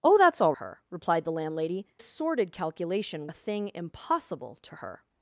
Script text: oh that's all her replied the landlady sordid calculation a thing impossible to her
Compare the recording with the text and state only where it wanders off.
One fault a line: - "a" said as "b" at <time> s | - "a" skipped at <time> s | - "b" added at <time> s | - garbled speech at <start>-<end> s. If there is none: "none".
none